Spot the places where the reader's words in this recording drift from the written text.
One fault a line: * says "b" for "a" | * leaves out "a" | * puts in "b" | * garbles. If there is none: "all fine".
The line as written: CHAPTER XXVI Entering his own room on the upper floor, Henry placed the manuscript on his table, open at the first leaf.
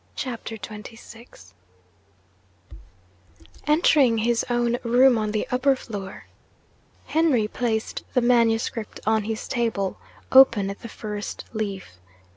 all fine